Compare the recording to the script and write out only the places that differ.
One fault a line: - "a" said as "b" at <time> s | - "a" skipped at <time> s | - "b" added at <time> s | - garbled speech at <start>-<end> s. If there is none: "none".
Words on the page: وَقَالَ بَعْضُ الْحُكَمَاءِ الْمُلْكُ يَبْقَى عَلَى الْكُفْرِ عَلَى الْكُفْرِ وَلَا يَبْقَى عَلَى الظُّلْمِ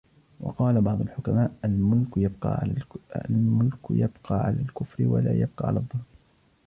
- "عَلَى الْكُفْرِ" skipped at 5.0 s